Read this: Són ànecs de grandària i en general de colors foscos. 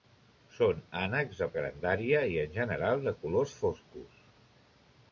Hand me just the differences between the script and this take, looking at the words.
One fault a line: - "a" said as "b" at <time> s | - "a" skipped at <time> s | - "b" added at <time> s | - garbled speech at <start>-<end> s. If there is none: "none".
none